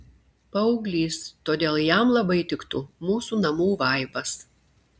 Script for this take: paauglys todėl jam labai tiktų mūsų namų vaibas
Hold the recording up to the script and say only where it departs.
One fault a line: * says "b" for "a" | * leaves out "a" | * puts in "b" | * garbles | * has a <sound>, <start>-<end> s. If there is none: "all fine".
all fine